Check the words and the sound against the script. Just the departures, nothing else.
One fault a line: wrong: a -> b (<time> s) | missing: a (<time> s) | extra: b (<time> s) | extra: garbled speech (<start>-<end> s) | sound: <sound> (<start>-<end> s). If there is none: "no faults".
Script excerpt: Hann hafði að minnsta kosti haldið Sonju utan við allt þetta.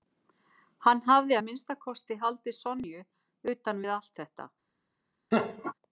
sound: laugh (5.3-5.7 s)